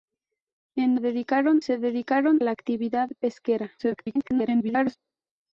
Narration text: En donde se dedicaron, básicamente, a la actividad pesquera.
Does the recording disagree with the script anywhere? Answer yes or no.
yes